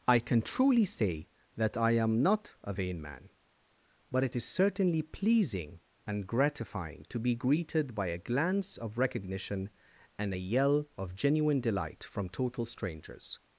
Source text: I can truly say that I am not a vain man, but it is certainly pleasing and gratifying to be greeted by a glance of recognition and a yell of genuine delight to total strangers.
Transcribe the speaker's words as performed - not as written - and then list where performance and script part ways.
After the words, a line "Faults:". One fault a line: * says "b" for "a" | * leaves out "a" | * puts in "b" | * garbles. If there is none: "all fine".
I can truly say that I am not a vain man, but it is certainly pleasing and gratifying to be greeted by a glance of recognition and a yell of genuine delight from total strangers.
Faults:
* says "from" for "to"